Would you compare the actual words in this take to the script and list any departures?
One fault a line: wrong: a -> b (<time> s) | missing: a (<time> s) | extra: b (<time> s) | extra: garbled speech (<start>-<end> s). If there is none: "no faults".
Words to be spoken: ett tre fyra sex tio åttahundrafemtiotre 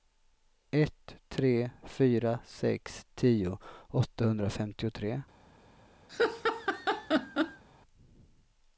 no faults